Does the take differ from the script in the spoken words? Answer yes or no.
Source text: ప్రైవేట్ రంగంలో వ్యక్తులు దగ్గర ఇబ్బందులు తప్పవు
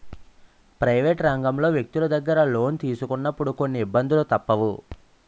yes